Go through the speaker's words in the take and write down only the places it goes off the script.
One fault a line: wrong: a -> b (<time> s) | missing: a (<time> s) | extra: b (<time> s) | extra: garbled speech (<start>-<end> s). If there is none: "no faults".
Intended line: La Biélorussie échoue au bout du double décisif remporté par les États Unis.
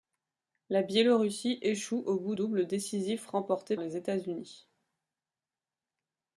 missing: du (2.4 s)
missing: par (3.8 s)